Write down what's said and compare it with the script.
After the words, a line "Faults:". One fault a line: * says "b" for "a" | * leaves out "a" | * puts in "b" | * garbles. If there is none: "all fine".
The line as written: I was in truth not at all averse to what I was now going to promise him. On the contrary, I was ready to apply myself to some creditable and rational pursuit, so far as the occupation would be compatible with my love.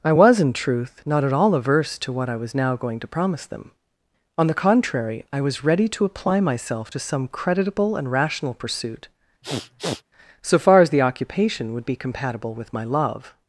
I was in truth not at all averse to what I was now going to promise them. On the contrary, I was ready to apply myself to some creditable and rational pursuit, so far as the occupation would be compatible with my love.
Faults:
* says "them" for "him"